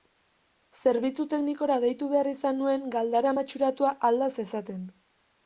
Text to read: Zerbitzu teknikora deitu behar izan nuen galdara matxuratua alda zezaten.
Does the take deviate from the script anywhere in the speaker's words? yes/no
no